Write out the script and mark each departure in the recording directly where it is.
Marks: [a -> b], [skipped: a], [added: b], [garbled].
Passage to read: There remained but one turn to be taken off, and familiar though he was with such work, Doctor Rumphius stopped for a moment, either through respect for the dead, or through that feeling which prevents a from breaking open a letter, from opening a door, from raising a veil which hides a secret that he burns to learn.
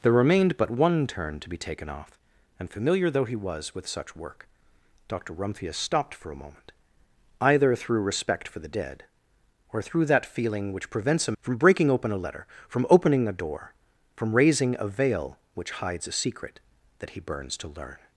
There remained but one turn to be taken off, and familiar though he was with such work, Doctor Rumphius stopped for a moment, either through respect for the dead, or through that feeling which prevents a from breaking open a letter, from opening a door, from raising a veil which hides a secret that he burns to learn.